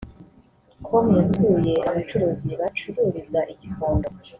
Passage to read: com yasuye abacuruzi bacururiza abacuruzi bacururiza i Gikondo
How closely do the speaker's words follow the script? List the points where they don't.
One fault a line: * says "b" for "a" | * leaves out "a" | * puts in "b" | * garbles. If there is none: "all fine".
* leaves out "abacuruzi bacururiza"